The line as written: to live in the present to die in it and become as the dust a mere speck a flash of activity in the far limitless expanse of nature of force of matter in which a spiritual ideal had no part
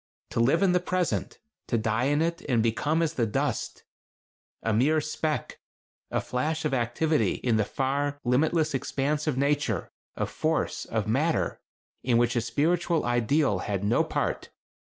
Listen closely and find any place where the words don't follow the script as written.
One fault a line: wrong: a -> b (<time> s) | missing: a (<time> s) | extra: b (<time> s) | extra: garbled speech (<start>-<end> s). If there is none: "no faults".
no faults